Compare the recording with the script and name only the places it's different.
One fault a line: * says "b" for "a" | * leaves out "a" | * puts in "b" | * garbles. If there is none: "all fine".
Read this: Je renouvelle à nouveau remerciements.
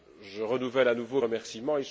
all fine